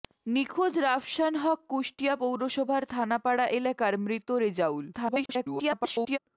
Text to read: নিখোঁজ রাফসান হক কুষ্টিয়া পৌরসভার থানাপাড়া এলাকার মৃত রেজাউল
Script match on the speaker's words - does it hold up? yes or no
no